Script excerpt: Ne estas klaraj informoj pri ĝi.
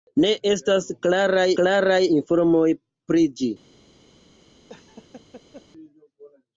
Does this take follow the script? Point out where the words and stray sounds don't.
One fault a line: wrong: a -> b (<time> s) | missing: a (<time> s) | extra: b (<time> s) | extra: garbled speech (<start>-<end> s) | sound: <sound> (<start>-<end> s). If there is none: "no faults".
extra: klaraj (1.6 s)
sound: laugh (4.7-5.6 s)